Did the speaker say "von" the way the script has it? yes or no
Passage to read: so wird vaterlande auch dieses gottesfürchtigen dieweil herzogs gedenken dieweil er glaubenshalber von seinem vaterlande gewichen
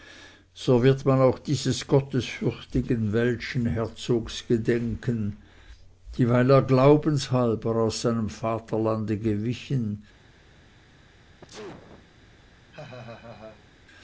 no